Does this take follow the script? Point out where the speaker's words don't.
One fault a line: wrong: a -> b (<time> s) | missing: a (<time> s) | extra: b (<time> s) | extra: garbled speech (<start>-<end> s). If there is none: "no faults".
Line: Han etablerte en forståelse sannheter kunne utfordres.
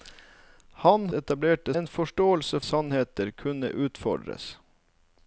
no faults